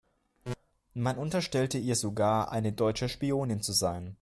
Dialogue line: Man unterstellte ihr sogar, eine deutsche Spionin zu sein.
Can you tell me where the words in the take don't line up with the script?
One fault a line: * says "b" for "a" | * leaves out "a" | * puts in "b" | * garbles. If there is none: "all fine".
all fine